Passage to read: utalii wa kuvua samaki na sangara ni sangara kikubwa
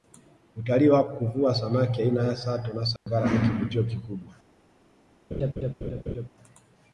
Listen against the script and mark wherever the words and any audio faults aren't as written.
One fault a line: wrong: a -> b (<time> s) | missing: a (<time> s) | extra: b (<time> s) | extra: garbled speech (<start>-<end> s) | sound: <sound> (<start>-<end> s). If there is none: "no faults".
extra: aina ya sato (2.0 s)
sound: dropout (3.0-3.1 s)
wrong: sangara -> kivutio (3.4 s)
sound: laugh (5.3-6.3 s)